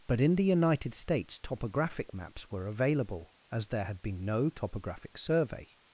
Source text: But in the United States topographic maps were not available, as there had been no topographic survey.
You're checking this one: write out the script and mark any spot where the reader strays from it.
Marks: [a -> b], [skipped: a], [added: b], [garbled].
But in the United States topographic maps were [skipped: not] available, as there had been no topographic survey.